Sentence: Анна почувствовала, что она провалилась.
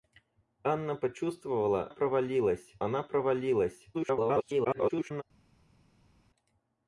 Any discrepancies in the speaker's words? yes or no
yes